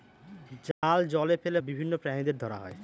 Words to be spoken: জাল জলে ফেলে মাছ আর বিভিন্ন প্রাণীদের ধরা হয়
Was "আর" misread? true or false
true